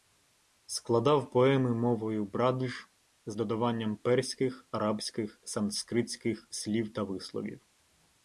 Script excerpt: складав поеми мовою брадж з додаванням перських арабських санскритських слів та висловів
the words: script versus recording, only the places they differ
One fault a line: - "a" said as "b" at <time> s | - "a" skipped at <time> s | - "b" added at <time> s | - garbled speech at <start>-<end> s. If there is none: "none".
none